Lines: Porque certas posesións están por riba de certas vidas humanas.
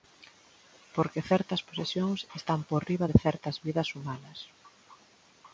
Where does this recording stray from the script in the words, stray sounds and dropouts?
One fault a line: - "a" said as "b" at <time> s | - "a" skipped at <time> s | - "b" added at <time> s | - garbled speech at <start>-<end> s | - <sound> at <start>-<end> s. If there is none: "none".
none